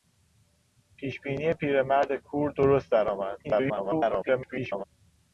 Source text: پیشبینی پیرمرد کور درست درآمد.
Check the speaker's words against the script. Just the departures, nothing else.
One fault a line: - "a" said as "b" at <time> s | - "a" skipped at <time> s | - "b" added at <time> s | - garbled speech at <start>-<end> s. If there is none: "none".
- garbled speech at 3.4-4.8 s